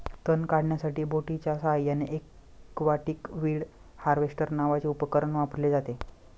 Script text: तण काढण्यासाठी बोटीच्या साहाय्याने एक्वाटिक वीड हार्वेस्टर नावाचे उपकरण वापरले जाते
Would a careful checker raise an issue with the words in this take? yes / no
no